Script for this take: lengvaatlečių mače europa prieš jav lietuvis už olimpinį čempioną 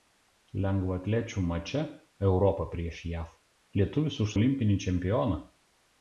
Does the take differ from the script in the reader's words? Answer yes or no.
no